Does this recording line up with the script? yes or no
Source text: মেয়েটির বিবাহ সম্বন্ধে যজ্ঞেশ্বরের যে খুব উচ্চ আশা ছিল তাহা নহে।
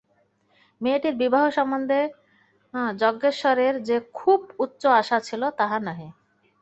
yes